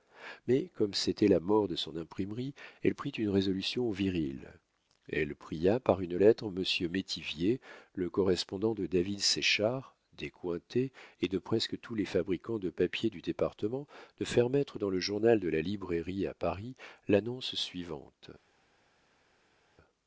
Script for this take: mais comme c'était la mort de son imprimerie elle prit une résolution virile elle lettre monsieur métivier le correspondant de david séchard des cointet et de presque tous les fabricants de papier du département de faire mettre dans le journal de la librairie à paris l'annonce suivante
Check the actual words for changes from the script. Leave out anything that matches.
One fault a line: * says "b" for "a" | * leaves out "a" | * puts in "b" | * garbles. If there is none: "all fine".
* puts in "pria par une"